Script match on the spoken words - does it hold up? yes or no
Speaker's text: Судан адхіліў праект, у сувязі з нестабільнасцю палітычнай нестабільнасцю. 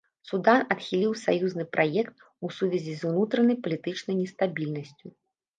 no